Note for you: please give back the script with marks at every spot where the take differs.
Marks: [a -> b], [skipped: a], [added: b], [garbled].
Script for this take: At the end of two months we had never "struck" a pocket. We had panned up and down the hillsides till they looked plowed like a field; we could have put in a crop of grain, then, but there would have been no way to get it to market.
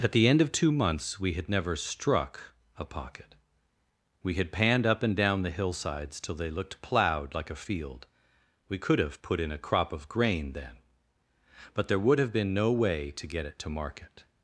At the end of two months we had never "struck" a pocket. We had panned up and down the hillsides till they looked plowed like a field; we could have put in a crop of grain, then, but there would have been no way to get it to market.